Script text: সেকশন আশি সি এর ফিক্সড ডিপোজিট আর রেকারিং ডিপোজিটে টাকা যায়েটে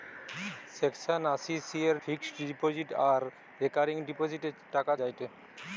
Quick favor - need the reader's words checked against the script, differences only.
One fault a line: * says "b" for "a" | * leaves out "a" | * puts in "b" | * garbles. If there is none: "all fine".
all fine